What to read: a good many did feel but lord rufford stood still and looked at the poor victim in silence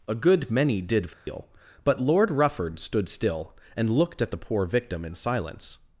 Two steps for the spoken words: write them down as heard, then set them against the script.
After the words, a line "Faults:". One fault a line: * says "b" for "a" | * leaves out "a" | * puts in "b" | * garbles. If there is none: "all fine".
a good many did feel but lord rufford stood still and looked at the poor victim in silence
Faults:
all fine